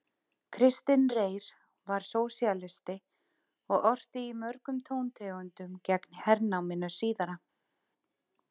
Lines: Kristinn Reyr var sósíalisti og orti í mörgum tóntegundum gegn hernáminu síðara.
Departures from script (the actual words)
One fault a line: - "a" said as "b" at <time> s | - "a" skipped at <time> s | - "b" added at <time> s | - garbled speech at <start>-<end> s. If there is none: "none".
none